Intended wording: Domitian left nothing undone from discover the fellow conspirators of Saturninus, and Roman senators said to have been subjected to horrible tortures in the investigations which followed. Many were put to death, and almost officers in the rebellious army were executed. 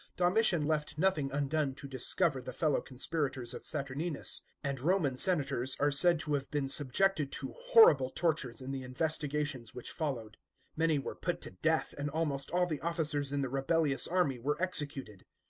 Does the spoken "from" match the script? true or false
false